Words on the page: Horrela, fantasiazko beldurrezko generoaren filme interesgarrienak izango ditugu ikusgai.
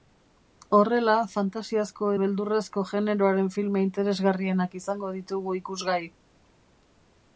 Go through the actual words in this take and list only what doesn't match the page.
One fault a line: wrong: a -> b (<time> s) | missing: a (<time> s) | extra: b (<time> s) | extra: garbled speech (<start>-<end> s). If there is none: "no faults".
no faults